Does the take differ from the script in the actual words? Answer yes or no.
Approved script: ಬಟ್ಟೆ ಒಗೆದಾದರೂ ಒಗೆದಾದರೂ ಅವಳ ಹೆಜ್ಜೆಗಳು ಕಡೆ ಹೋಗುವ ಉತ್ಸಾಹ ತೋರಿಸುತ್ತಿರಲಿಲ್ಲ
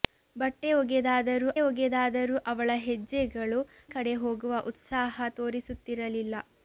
no